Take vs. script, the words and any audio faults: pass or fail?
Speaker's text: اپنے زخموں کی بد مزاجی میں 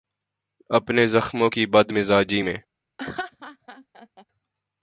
fail